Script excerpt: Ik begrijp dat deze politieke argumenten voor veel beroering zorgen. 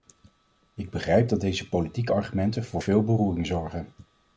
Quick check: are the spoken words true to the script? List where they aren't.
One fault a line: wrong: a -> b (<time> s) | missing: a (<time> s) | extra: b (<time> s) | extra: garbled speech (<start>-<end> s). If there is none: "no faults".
no faults